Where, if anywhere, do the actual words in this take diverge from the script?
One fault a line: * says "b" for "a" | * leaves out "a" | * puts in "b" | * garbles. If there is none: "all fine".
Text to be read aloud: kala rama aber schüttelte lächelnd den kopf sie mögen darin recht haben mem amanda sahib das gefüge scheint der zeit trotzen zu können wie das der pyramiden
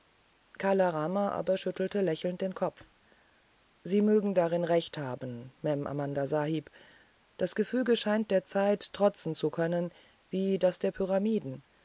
all fine